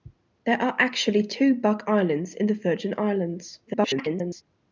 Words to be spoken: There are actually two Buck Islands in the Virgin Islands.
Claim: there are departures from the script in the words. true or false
true